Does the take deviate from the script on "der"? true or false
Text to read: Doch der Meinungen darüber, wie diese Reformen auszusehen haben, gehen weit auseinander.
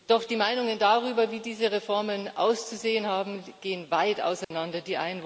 true